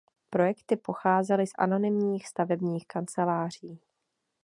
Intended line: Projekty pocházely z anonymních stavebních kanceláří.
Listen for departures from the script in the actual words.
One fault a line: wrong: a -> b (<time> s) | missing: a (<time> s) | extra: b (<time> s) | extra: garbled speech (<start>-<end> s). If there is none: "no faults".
no faults